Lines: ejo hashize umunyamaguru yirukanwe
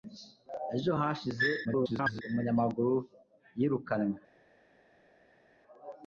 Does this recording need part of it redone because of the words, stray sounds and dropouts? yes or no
yes